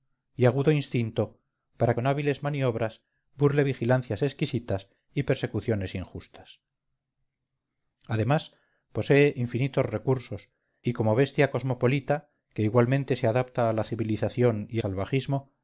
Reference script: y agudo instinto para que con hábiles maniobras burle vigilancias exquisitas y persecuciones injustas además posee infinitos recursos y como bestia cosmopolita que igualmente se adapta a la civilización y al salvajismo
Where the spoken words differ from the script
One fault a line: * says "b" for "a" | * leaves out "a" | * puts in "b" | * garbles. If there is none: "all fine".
* leaves out "que"
* leaves out "al"